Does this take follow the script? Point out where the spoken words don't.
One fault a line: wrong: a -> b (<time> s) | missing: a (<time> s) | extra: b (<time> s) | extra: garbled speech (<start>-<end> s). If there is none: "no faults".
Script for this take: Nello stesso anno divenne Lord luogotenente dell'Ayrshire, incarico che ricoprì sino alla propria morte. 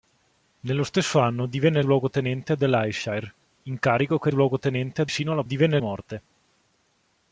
missing: Lord (1.8 s)
wrong: ricoprì -> luogotenente (4.3 s)
wrong: propria -> divenne (5.4 s)